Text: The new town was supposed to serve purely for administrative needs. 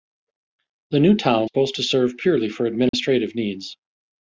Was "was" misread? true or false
true